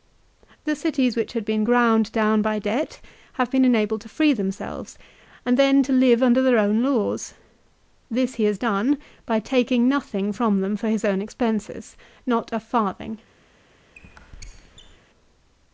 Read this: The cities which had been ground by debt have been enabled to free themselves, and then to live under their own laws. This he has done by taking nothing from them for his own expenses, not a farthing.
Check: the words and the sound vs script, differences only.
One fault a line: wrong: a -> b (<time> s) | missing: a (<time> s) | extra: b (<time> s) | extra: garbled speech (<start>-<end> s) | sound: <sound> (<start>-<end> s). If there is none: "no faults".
extra: down (2.1 s)
sound: squeak (13.9-15.0 s)